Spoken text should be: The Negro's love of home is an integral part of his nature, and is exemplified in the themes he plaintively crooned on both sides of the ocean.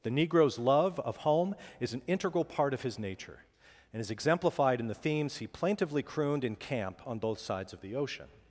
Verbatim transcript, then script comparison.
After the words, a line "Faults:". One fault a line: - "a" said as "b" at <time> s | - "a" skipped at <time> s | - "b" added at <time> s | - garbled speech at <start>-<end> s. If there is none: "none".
The Negro's love of home is an integral part of his nature, and is exemplified in the themes he plaintively crooned in camp on both sides of the ocean.
Faults:
- "in camp" added at 6.4 s